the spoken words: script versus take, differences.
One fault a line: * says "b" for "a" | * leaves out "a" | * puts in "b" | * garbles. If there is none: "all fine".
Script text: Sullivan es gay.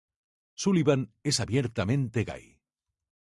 * puts in "abiertamente"